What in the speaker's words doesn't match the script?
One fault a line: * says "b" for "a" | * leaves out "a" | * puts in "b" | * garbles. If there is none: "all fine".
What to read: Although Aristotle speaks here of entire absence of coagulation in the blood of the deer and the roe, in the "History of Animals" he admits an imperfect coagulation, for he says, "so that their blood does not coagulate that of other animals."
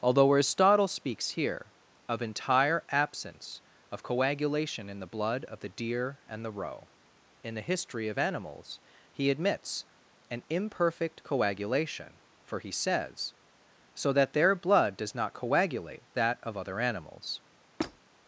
all fine